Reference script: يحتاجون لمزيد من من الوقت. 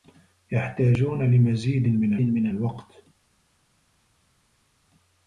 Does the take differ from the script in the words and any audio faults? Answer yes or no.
no